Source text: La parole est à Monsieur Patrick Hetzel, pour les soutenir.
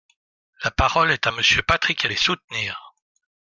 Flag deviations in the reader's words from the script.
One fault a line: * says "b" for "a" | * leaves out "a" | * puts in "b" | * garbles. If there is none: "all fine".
* leaves out "Hetzel pour"